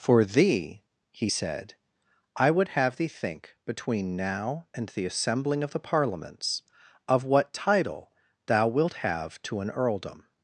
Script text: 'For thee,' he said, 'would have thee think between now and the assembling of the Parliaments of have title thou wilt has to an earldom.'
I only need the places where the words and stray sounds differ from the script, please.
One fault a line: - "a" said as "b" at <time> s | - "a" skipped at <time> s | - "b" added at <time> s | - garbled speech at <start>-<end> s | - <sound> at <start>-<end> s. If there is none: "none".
- "I" added at 2.4 s
- "have" said as "what" at 7.3 s
- "has" said as "have" at 9.0 s